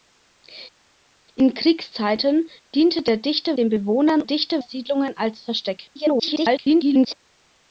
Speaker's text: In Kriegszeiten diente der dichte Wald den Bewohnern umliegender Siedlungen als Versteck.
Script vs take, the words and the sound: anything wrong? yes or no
yes